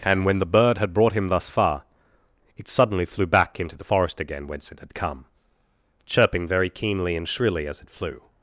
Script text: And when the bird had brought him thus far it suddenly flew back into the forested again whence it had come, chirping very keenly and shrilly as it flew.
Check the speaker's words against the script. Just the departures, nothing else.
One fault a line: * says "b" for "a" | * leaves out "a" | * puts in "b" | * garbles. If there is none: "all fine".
* says "forest" for "forested"